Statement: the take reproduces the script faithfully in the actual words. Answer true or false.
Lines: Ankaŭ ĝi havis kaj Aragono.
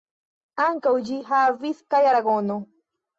true